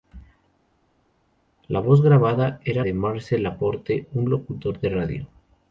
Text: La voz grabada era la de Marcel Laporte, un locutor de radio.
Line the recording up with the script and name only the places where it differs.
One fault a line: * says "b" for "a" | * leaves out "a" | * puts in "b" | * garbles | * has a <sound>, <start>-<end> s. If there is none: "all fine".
* leaves out "la"